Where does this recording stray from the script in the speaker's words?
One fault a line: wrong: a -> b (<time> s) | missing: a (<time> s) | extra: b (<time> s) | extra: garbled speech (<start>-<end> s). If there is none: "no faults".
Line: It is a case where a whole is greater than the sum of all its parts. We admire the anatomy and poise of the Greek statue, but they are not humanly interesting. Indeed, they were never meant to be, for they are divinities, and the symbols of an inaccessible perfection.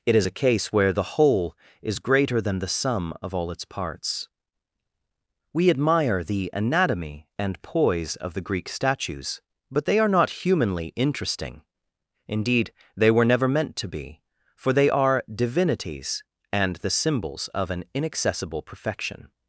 wrong: a -> the (0.9 s)
wrong: statue -> statues (8.7 s)